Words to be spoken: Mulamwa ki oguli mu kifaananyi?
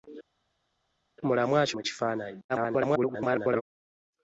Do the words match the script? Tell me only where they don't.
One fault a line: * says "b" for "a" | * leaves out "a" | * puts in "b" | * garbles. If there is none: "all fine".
* leaves out "oguli"
* garbles